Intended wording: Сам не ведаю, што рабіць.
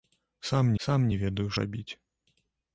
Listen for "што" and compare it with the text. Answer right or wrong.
wrong